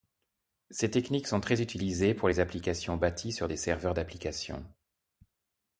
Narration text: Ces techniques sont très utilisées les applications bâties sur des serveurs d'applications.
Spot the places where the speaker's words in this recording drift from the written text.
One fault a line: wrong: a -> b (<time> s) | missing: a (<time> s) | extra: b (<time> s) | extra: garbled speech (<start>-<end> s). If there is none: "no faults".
extra: pour (2.1 s)